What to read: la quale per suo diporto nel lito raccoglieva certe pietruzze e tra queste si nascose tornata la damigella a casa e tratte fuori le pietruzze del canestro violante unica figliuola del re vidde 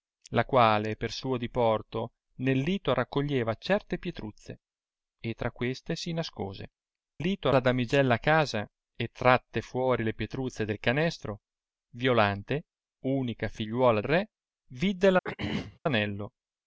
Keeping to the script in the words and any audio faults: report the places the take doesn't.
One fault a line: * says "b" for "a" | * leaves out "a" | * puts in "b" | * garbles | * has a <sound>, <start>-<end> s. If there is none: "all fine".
* says "lito" for "tornata"
* leaves out "del"
* has a throat clearing, 15.2-15.8 s